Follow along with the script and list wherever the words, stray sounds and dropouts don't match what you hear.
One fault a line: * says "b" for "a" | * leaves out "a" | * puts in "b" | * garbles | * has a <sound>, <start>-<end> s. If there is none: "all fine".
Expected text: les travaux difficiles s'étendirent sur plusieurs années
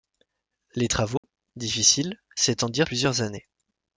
* has a dropout, 1.2-1.2 s
* leaves out "sur"